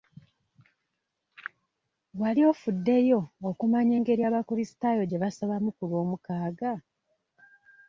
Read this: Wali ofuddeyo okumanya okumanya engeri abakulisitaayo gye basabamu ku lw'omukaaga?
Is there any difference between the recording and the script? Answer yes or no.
yes